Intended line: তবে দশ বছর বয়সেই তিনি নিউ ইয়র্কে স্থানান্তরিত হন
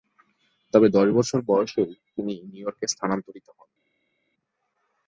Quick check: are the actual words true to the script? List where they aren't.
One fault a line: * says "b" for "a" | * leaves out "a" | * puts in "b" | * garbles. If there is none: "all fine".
all fine